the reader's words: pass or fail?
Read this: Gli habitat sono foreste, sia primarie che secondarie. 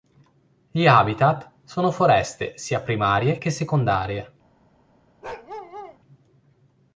pass